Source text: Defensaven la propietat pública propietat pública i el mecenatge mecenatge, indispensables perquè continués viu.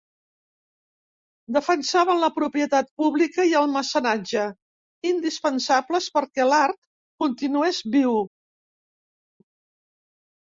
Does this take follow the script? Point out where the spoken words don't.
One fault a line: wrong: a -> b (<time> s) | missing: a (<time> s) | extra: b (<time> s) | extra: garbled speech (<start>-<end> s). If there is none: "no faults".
missing: propietat pública (3.5 s)
missing: mecenatge (4.5 s)
extra: l'art (6.5 s)